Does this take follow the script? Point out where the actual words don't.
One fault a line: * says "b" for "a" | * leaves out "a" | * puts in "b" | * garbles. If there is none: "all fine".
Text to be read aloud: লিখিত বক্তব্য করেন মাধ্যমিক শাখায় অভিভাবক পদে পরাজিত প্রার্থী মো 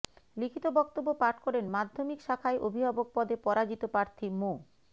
* puts in "পাঠ"